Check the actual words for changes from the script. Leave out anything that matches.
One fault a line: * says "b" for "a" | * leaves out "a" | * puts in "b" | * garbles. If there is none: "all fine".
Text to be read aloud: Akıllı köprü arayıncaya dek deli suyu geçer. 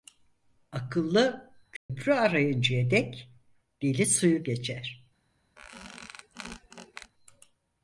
all fine